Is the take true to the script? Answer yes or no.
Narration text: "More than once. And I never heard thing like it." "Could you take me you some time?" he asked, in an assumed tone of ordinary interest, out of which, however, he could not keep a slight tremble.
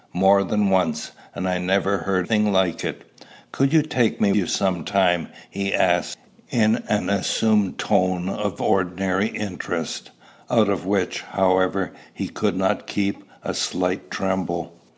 yes